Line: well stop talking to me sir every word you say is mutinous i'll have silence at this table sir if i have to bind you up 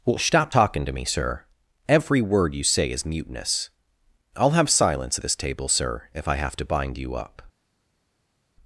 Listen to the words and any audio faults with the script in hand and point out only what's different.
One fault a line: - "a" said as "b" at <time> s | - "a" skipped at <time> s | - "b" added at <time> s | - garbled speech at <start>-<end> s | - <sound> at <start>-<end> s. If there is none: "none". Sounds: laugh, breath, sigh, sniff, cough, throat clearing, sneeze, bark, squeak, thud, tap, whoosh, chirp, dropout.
none